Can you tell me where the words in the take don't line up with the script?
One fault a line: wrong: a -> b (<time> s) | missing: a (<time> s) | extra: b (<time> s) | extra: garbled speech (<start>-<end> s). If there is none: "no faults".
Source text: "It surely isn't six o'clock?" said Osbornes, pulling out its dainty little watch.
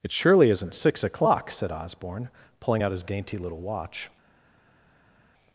wrong: Osbornes -> Osborne (1.7 s)
wrong: its -> his (2.9 s)